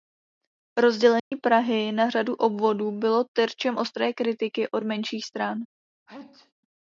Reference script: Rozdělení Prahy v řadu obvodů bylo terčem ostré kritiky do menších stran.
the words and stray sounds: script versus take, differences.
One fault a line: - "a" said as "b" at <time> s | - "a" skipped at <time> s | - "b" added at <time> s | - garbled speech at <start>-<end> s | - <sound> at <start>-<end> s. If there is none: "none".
- dropout at 1.2-1.3 s
- "v" said as "na" at 1.9 s
- "do" said as "od" at 4.7 s
- sneeze at 6.1-6.5 s